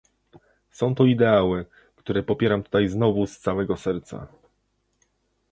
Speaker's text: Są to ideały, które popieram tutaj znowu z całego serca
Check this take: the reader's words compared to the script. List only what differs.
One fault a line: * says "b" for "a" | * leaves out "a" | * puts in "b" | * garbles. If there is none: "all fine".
all fine